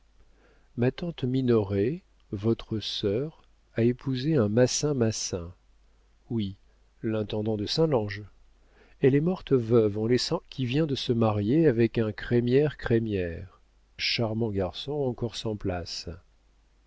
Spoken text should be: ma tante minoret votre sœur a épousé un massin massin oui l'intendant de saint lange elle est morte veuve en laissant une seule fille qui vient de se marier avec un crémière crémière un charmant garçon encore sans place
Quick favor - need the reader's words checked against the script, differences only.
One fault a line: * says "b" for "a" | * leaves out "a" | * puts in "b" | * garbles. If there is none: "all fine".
* leaves out "une seule fille"
* leaves out "un"